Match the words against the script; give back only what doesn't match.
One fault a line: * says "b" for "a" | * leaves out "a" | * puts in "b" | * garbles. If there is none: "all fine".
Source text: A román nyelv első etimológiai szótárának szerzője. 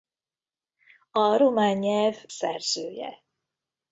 * leaves out "első etimológiai szótárának"